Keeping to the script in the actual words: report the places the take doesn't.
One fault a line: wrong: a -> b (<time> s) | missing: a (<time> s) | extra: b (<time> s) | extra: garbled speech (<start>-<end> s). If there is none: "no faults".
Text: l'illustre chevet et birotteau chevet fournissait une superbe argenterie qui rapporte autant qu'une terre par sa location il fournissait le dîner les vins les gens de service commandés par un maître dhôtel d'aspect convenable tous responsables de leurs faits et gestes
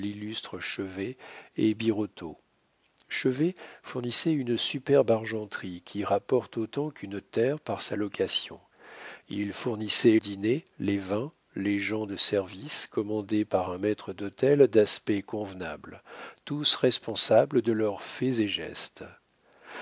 missing: le (10.2 s)